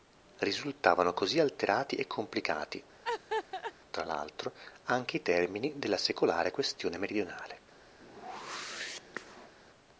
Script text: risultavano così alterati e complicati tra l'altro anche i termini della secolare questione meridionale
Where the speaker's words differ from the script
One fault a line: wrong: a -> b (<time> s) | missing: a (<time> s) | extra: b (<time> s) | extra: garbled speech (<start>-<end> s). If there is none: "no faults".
no faults